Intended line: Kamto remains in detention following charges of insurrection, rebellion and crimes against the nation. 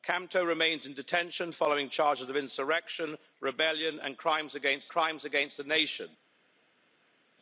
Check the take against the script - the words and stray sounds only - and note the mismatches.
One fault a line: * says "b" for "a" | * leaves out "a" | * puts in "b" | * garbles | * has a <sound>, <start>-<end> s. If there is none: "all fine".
* puts in "crimes against"